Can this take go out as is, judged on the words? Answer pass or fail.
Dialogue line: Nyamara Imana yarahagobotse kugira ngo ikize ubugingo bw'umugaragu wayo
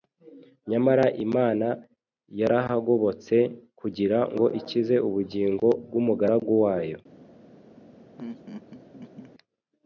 pass